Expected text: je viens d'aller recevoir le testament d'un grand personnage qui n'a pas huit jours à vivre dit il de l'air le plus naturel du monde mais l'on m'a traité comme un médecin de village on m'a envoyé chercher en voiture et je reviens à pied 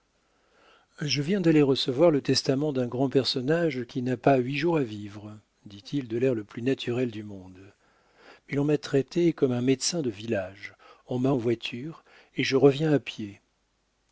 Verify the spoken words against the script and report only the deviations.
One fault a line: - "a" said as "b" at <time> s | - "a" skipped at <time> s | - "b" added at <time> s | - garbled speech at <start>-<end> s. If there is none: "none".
- "envoyé chercher" skipped at 11.3 s